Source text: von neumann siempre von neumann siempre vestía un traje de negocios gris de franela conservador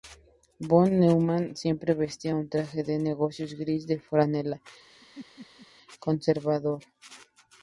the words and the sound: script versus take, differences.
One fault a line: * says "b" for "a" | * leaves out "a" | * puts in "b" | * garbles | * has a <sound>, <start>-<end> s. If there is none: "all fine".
* leaves out "von neumann siempre"
* has a laugh, 4.9-5.7 s